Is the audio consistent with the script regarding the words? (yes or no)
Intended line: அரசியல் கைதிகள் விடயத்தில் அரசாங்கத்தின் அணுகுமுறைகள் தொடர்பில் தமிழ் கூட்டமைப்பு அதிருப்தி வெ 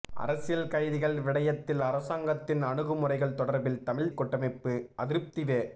yes